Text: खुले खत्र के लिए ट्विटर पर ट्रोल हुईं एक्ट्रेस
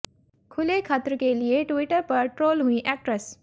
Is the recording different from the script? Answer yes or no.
no